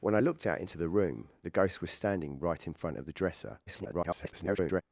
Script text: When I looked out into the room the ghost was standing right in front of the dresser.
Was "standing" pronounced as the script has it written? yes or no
yes